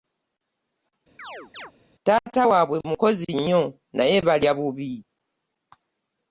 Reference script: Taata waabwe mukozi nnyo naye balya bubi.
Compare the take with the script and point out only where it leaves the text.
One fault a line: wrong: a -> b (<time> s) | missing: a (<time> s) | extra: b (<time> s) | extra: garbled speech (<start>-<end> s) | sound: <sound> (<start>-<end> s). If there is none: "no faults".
sound: chirp (1.2-1.7 s)